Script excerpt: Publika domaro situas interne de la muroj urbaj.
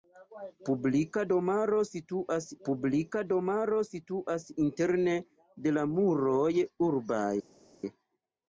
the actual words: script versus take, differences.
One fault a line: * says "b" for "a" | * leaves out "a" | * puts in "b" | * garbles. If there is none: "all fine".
* puts in "publika domaro situas"